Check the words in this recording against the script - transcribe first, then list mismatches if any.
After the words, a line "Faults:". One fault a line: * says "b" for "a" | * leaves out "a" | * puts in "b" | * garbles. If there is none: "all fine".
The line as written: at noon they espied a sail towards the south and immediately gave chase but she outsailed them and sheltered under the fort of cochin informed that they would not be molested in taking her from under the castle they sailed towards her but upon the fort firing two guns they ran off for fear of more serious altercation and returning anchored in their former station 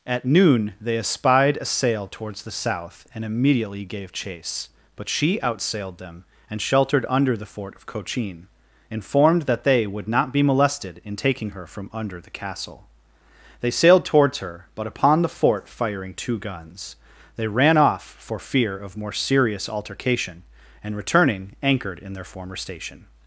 at noon they espied a sail towards the south and immediately gave chase but she outsailed them and sheltered under the fort of cochin informed that they would not be molested in taking her from under the castle they sailed towards her but upon the fort firing two guns they ran off for fear of more serious altercation and returning anchored in their former station
Faults:
all fine